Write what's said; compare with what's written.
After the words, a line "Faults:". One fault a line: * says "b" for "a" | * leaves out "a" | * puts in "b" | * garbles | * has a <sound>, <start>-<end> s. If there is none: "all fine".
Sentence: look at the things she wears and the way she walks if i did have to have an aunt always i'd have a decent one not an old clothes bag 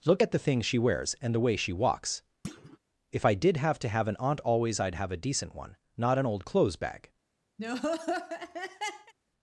look at the things she wears and the way she walks if i did have to have an aunt always i'd have a decent one not an old clothes bag
Faults:
* has a thud, 2.4-2.8 s
* has a laugh, 7.6-9.1 s